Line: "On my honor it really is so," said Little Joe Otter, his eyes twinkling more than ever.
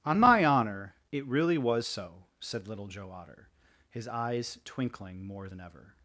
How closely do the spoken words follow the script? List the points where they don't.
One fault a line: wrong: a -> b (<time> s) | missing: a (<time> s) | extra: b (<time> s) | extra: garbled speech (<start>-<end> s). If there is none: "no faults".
wrong: is -> was (1.6 s)